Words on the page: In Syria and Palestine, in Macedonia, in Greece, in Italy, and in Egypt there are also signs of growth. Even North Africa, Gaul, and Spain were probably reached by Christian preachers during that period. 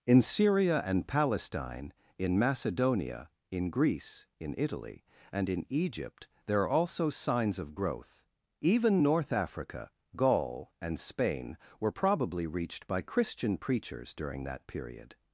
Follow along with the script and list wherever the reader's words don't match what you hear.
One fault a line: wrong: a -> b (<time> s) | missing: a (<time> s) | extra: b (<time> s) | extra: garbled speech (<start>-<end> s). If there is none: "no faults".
no faults